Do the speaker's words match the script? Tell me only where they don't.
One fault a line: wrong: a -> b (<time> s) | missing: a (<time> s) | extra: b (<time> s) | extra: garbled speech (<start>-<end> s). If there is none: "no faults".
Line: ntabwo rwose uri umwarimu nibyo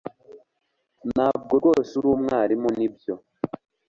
no faults